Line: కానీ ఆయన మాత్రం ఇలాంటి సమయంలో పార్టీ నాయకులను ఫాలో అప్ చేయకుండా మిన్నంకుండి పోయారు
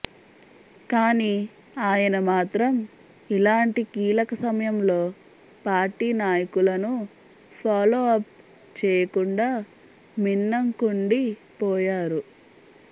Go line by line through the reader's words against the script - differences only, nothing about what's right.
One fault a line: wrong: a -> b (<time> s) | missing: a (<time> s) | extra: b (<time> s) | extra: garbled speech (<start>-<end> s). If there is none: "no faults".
extra: కీలక (3.9 s)